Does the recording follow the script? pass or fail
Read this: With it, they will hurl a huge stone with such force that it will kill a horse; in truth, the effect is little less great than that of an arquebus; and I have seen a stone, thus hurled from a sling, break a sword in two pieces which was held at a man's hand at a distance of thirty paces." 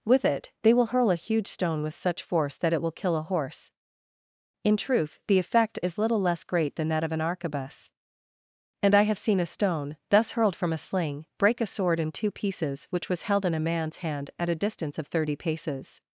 fail